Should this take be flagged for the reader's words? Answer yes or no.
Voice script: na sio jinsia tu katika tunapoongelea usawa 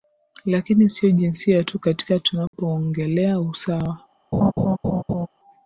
yes